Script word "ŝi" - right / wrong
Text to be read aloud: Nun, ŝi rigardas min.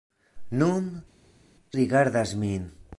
wrong